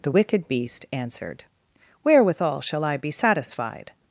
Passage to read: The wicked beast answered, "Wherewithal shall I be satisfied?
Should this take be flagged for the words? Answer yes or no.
no